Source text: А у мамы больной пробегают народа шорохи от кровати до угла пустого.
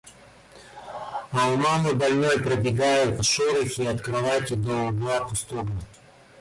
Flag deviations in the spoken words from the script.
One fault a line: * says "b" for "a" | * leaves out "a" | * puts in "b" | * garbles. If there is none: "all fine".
* leaves out "народа"